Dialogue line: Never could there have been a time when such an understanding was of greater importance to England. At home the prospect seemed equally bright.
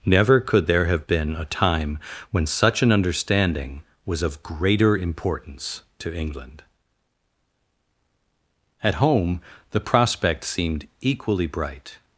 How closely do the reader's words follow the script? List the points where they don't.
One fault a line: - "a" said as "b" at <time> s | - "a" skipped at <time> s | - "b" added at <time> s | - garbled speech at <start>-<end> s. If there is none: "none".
none